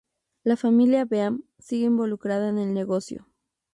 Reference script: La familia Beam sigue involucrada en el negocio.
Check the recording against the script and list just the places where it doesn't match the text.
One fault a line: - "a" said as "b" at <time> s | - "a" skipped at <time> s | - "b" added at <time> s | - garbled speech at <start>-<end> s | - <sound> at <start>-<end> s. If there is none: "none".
none